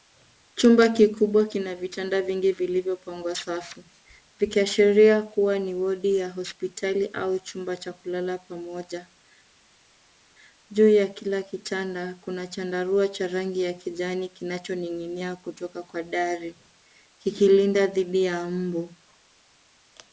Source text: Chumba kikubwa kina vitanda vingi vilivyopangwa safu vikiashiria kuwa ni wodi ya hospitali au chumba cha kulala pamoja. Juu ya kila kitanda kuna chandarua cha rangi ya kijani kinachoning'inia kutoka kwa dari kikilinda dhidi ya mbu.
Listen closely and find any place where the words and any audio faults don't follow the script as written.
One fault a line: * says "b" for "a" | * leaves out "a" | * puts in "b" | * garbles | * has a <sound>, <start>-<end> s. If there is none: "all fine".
all fine